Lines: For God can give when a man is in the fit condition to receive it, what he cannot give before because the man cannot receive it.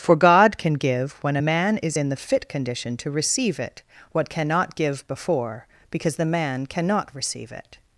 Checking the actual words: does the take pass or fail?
fail